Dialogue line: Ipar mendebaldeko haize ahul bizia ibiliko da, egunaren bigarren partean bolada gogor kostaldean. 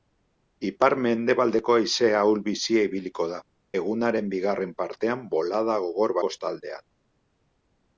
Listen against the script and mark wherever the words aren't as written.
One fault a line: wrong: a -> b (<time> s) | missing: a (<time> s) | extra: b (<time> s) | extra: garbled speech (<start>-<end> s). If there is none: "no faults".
no faults